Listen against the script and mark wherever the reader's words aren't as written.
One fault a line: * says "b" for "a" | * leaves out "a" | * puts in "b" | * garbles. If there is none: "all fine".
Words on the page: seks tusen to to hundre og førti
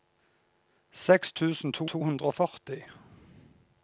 all fine